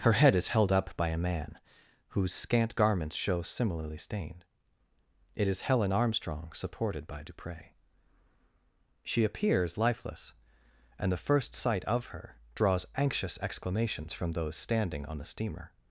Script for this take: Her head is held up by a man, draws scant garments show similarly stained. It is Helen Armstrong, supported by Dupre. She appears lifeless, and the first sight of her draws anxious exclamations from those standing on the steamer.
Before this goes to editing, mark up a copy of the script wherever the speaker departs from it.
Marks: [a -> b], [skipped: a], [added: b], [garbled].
Her head is held up by a man, [draws -> whose] scant garments show similarly stained. It is Helen Armstrong, supported by Dupre. She appears lifeless, and the first sight of her draws anxious exclamations from those standing on the steamer.